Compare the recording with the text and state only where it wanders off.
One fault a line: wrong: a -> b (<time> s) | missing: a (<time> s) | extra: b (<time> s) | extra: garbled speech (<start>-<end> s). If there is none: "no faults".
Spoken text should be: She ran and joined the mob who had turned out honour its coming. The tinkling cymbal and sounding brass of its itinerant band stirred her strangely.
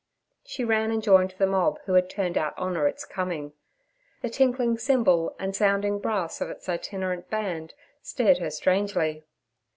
no faults